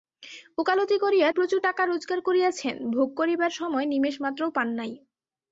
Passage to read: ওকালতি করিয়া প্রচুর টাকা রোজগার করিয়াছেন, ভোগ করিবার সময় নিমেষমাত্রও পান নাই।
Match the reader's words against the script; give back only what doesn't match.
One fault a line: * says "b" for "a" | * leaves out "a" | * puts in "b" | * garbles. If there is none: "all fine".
all fine